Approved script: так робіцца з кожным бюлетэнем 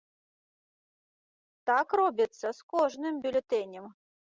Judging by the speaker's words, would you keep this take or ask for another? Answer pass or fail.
pass